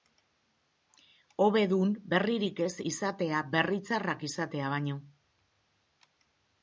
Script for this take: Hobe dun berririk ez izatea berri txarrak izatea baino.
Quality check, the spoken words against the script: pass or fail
pass